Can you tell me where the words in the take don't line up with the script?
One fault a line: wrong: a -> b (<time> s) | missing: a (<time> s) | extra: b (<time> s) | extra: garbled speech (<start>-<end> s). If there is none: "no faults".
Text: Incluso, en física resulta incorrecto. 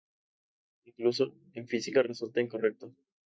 no faults